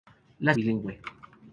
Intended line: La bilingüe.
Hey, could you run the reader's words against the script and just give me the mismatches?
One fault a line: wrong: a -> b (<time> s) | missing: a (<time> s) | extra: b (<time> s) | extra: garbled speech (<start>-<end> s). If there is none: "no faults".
no faults